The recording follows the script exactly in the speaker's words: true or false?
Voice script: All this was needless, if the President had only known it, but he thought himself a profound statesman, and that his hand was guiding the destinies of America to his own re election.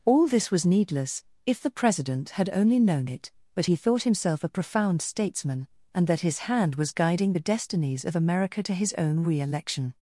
true